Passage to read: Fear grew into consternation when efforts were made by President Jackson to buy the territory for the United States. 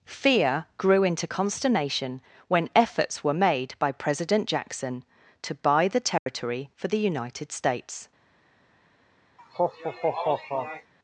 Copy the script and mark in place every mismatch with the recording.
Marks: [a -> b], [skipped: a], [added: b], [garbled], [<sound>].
Fear grew into consternation when efforts were made by President Jackson to buy the territory [dropout] for the United States. [laugh]